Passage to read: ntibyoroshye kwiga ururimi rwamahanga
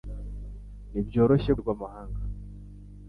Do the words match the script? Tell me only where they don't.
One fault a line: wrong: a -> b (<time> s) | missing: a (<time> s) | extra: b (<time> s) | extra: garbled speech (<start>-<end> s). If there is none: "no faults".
missing: kwiga ururimi (1.5 s)